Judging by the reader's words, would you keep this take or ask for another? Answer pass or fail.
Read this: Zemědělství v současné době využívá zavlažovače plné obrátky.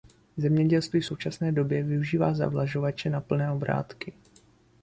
fail